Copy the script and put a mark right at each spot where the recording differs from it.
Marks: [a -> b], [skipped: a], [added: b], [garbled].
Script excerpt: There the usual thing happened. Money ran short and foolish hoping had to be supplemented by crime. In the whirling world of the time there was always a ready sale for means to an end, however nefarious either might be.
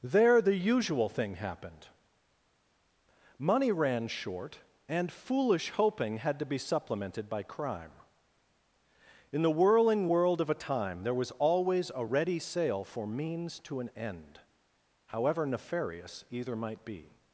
There the usual thing happened. Money ran short and foolish hoping had to be supplemented by crime. In the whirling world of [the -> a] time there was always a ready sale for means to an end, however nefarious either might be.